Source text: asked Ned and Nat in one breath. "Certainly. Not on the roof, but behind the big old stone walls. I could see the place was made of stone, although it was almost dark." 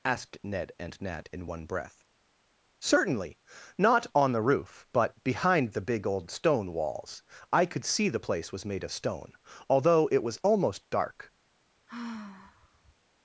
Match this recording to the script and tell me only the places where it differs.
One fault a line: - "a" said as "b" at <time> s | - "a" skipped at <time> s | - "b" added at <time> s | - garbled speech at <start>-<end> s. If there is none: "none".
none